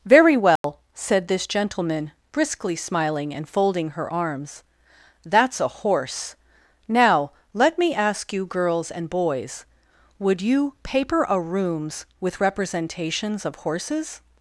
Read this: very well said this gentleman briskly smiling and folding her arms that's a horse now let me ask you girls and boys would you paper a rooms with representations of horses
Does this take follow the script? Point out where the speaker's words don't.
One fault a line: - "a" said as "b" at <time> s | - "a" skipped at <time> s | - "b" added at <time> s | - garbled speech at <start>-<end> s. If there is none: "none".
none